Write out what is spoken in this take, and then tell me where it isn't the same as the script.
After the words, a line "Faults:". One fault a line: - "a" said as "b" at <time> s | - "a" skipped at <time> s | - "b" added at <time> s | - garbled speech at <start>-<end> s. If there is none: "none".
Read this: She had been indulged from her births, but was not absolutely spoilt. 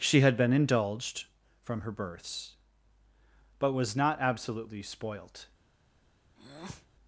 She had been indulged from her births, but was not absolutely spoilt.
Faults:
none